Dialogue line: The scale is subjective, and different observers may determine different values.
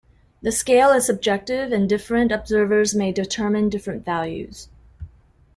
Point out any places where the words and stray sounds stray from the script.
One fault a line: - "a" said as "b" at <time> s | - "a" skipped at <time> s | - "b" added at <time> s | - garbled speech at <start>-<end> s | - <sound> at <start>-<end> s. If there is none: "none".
none